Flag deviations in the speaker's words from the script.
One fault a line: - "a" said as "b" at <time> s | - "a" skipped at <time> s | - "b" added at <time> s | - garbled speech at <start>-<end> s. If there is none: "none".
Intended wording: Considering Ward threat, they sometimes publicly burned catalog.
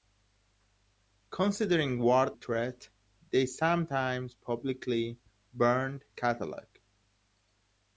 none